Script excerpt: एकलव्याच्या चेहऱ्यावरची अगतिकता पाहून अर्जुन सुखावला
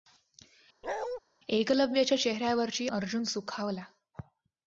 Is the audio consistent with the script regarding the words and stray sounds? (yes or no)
no